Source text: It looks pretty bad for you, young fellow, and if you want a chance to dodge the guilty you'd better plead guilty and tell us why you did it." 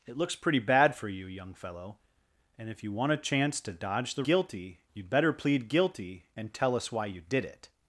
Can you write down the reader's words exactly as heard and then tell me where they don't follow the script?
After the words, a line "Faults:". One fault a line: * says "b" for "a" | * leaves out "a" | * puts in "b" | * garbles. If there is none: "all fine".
It looks pretty bad for you, young fellow, and if you want a chance to dodge the guilty you'd better plead guilty and tell us why you did it."
Faults:
all fine